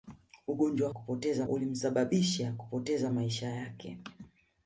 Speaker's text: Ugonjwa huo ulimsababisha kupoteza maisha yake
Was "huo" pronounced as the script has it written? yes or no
no